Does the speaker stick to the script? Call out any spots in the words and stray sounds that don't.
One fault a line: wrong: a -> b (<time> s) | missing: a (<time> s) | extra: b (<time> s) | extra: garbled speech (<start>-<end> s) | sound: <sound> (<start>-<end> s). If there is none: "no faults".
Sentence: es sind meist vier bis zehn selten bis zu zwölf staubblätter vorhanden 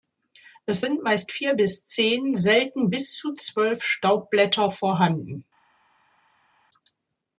no faults